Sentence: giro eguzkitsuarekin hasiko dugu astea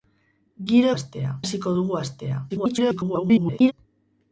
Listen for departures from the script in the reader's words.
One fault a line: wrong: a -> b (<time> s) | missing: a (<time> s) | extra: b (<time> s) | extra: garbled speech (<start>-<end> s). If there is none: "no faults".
wrong: eguzkitsuarekin -> astea (1.0 s)
extra: garbled speech (2.5-3.7 s)